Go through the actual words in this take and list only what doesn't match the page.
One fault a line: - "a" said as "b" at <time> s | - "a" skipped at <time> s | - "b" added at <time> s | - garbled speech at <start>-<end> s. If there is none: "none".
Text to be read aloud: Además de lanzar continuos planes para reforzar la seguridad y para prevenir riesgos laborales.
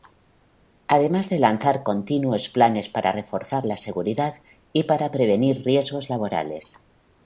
none